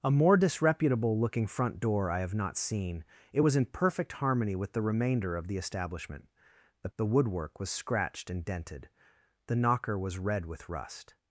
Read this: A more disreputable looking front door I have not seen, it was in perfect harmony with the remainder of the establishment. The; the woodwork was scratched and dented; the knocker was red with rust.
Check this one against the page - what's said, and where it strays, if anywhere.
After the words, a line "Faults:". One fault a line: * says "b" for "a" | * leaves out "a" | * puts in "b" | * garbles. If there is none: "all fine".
A more disreputable looking front door I have not seen, it was in perfect harmony with the remainder of the establishment. The; the woodwork was scratched and dented; the knocker was red with rust.
Faults:
all fine